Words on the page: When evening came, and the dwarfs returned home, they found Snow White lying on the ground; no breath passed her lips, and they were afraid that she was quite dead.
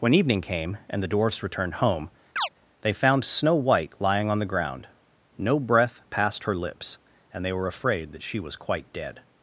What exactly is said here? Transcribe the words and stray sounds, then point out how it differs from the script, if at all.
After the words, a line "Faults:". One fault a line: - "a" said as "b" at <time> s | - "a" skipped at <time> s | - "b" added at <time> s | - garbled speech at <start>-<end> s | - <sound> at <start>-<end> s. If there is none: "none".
When evening came, and the dwarfs returned home, they found Snow White lying on the ground; no breath passed her lips, and they were afraid that she was quite dead.
Faults:
- chirp at 2.4-2.5 s